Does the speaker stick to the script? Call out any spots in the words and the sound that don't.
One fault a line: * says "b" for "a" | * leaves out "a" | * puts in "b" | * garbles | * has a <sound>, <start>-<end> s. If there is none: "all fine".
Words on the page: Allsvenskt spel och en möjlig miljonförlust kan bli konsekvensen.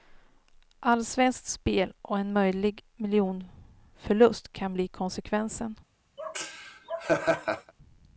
* has a laugh, 6.2-7.7 s